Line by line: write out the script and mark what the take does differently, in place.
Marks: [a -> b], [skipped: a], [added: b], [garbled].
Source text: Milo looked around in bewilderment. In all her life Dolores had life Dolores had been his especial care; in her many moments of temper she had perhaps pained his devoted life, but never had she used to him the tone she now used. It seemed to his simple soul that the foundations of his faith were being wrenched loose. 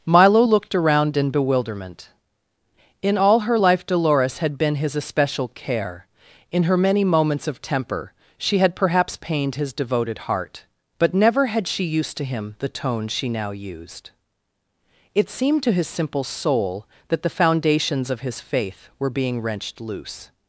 Milo looked around in bewilderment. In all her life Dolores had [skipped: life Dolores had] been his especial care; in her many moments of temper she had perhaps pained his devoted [life, -> heart] but never had she used to him the tone she now used. It seemed to his simple soul that the foundations of his faith were being wrenched loose.